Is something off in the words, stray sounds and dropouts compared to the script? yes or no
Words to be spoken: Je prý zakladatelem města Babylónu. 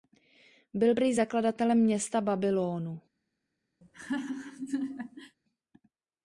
yes